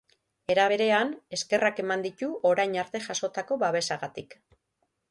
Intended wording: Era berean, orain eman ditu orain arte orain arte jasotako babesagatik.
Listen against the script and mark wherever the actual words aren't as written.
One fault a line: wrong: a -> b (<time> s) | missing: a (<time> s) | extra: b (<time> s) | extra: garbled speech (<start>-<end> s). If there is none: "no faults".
wrong: orain -> eskerrak (1.4 s)
missing: orain arte (3.0 s)